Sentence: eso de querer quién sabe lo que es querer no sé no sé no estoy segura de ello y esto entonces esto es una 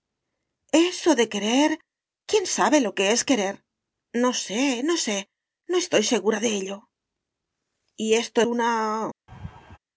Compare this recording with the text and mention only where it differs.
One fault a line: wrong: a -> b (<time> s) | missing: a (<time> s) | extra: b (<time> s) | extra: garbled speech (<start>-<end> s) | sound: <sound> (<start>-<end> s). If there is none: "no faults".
missing: entonces esto es (8.4 s)
sound: laugh (9.3-9.8 s)